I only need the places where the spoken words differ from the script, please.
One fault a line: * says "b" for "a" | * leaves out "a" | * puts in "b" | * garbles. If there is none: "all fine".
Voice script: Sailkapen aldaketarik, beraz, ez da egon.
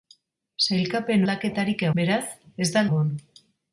all fine